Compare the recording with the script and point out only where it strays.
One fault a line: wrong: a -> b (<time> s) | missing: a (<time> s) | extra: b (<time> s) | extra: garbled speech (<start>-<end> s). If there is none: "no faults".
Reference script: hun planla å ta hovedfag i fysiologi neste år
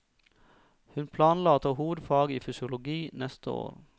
no faults